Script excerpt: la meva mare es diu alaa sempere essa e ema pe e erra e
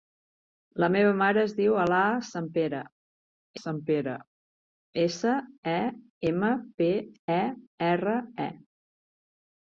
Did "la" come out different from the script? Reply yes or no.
no